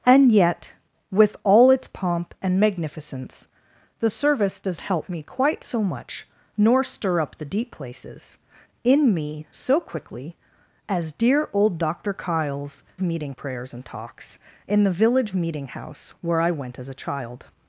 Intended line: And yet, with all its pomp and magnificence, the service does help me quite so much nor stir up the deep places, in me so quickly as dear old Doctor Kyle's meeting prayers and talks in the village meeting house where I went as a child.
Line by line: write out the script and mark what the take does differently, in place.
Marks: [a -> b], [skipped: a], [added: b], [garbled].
And yet, with all its pomp and magnificence, the service does help me quite so much nor stir up the deep places, in me so quickly as dear old Doctor Kyle's meeting prayers and talks in the village meeting house where I went as a child.